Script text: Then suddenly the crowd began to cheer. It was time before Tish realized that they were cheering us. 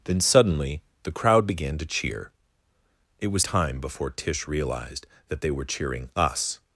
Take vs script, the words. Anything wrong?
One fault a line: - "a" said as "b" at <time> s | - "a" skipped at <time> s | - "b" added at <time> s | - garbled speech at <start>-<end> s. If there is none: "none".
none